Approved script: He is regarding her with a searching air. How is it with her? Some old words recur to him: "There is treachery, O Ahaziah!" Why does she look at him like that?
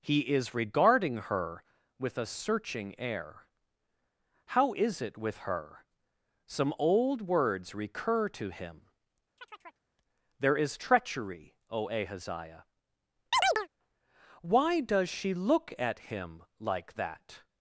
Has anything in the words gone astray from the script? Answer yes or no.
no